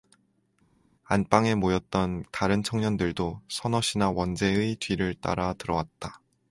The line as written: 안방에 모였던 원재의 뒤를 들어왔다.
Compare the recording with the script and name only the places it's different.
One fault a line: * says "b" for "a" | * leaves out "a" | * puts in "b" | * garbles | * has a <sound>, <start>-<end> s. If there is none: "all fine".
* puts in "다른 청년들도 서넛이나"
* puts in "따라"